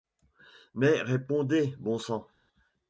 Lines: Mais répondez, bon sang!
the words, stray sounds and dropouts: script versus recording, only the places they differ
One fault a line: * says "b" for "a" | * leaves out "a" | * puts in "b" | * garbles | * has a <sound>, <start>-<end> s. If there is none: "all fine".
all fine